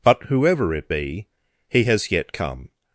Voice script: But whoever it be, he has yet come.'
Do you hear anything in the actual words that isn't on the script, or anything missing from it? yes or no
no